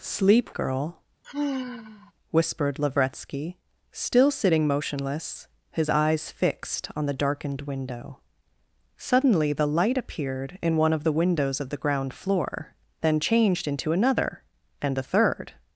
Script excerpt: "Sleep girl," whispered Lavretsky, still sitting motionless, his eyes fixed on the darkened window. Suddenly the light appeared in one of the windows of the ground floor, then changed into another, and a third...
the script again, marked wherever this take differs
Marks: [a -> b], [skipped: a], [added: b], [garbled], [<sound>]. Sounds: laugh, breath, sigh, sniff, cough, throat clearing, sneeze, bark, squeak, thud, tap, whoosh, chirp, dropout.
"Sleep girl," [sigh] whispered Lavretsky, still sitting motionless, his eyes fixed on the darkened window. Suddenly the light appeared in one of the windows of the ground floor, then changed into another, and a third...